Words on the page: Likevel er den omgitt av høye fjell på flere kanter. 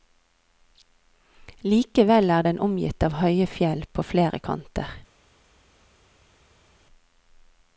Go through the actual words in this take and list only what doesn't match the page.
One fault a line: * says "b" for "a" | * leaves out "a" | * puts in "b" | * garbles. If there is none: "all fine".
all fine